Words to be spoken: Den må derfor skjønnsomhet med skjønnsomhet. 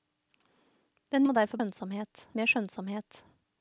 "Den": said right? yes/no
yes